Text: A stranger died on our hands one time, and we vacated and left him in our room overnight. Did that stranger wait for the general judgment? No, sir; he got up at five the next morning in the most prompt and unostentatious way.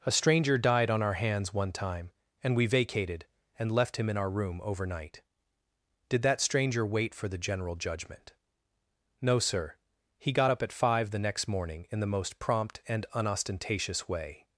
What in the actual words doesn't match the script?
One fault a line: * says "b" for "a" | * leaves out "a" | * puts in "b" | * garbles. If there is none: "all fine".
all fine